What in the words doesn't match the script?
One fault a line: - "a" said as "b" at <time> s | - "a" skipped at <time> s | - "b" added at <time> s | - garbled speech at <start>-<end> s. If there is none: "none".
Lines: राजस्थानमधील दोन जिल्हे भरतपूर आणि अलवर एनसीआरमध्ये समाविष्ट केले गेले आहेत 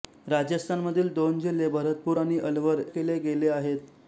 - "एनसीआरमध्ये समाविष्ट" skipped at 2.8 s